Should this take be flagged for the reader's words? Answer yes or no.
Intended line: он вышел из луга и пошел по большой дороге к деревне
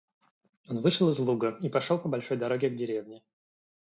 no